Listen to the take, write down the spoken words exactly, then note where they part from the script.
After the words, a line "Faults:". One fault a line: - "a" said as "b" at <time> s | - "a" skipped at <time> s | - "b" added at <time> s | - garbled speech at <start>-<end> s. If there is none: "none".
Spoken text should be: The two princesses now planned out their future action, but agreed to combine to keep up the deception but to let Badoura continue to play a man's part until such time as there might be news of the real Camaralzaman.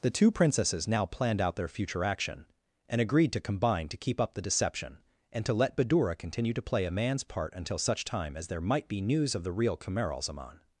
The two princesses now planned out their future action, and agreed to combine to keep up the deception and to let Badoura continue to play a man's part until such time as there might be news of the real Camaralzaman.
Faults:
- "but" said as "and" at 2.9 s
- "but" said as "and" at 5.3 s